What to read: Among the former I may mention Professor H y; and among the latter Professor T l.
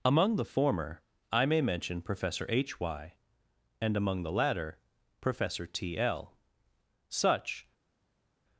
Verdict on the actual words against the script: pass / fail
fail